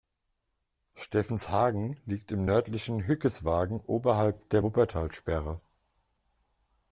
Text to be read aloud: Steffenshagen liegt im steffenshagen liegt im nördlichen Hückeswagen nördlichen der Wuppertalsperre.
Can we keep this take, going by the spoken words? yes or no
no